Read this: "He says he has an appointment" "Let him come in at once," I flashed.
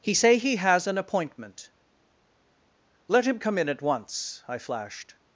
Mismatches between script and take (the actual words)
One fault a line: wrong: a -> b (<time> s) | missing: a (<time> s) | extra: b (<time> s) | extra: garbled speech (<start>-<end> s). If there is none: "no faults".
wrong: says -> say (0.1 s)